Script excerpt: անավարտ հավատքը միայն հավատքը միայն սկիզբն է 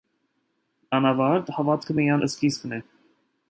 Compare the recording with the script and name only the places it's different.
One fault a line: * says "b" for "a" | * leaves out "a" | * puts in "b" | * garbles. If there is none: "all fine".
* leaves out "հավատքը միայն"